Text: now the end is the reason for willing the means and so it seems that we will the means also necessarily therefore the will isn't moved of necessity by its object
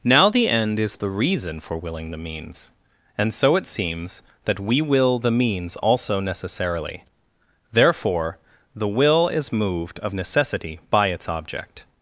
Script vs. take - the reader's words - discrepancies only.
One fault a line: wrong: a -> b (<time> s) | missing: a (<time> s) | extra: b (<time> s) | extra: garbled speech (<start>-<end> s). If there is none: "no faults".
wrong: isn't -> is (9.3 s)